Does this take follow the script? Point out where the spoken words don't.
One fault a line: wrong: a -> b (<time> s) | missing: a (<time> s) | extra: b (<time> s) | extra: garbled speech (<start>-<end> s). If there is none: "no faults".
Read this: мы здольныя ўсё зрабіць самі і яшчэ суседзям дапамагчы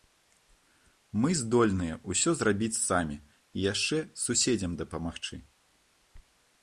no faults